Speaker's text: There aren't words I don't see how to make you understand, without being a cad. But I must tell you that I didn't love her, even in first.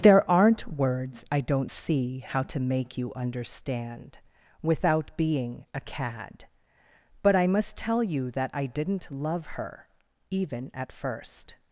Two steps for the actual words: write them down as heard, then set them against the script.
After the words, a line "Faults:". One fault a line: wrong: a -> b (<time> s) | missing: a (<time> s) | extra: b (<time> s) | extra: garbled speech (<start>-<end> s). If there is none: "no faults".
There aren't words I don't see how to make you understand, without being a cad. But I must tell you that I didn't love her, even at first.
Faults:
wrong: in -> at (10.7 s)